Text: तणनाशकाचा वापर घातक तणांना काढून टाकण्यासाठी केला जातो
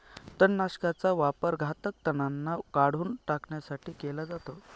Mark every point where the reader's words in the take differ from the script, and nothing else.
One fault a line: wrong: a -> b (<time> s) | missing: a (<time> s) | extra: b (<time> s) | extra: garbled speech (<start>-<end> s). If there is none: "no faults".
no faults